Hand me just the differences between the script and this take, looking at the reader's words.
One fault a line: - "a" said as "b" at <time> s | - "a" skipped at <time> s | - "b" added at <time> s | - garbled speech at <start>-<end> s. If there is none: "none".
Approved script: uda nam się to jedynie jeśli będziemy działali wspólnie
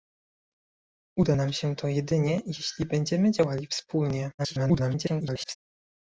- garbled speech at 4.4-5.5 s